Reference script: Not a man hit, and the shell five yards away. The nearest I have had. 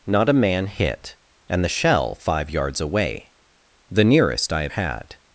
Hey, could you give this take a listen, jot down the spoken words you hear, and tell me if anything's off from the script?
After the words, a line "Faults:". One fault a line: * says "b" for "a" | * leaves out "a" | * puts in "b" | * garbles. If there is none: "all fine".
Not a man hit, and the shell five yards away. The nearest I have had.
Faults:
all fine